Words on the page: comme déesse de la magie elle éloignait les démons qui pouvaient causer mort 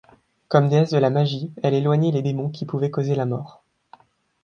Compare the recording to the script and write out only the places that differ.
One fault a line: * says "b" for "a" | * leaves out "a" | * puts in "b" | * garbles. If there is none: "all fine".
* puts in "la"